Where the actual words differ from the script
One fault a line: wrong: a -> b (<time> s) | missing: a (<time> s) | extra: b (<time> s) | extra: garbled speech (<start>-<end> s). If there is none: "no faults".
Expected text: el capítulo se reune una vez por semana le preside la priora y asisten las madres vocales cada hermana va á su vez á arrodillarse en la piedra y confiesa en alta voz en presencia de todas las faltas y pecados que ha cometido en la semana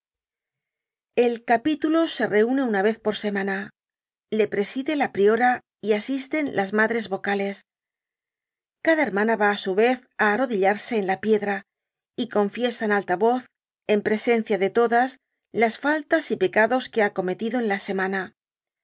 no faults